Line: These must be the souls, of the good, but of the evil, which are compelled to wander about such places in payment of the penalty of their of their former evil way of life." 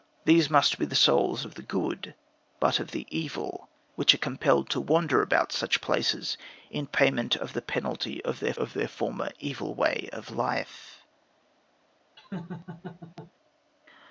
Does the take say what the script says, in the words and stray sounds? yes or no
no